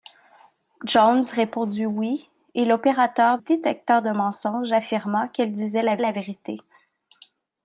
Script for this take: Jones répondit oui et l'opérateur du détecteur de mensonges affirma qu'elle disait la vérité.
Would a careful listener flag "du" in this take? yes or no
yes